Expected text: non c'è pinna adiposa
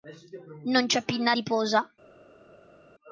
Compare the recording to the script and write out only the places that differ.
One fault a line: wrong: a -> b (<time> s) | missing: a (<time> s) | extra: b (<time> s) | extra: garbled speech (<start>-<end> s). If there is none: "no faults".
no faults